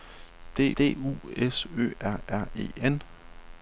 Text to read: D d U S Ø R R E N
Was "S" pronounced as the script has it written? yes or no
yes